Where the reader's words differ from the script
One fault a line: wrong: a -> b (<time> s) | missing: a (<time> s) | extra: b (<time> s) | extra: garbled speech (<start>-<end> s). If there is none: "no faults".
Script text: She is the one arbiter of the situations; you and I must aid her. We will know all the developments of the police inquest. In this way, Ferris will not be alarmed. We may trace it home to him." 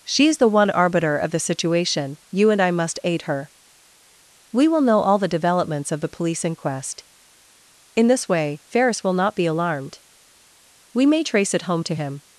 wrong: situations -> situation (1.4 s)